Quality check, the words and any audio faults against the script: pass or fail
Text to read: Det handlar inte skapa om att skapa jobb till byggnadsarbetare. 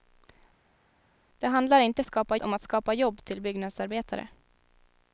pass